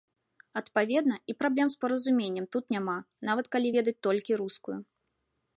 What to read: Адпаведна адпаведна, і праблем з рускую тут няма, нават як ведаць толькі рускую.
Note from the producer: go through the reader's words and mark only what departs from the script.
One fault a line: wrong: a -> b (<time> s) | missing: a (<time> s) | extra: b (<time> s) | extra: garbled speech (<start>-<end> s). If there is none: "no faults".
missing: адпаведна (1.1 s)
wrong: рускую -> паразуменнем (1.8 s)
wrong: як -> калі (3.6 s)